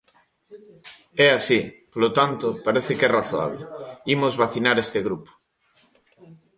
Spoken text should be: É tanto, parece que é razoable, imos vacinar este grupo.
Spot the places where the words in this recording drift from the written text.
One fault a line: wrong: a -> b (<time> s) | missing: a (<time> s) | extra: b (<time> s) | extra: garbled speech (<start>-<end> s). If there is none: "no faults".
extra: así polo (1.4 s)